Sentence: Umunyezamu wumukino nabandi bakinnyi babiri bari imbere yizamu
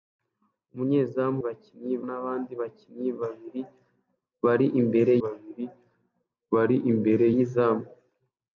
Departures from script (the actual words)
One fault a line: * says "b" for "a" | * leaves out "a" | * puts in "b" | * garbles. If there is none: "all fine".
* says "bakinnyi" for "wumukino"
* puts in "babiri bari imbere"